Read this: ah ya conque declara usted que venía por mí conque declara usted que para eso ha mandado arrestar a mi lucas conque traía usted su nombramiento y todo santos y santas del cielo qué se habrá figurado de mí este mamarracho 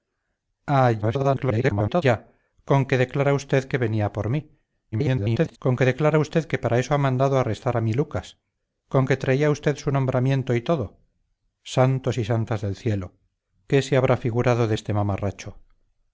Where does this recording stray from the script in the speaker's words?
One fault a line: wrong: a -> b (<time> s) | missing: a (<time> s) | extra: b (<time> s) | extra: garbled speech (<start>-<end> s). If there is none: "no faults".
extra: garbled speech (1.0-2.0 s)
extra: garbled speech (4.9-5.6 s)
missing: mí (14.8 s)